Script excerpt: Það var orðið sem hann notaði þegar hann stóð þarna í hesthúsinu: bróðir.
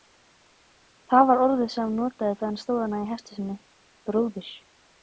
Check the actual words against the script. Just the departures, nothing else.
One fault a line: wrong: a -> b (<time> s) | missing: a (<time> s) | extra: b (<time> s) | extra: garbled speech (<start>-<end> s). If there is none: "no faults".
no faults